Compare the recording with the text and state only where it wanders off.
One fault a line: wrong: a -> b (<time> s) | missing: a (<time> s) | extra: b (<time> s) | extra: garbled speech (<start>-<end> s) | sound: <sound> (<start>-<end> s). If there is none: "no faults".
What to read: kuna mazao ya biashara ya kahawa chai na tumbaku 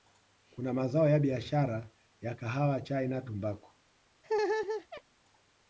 sound: laugh (4.2-5.0 s)